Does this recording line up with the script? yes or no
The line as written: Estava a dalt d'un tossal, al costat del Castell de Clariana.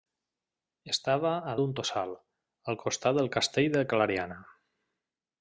no